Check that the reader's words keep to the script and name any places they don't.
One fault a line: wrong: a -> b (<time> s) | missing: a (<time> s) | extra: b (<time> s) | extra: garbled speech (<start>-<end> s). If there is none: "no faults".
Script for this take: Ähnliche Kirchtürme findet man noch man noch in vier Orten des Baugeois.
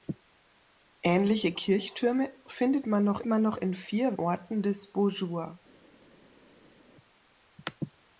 no faults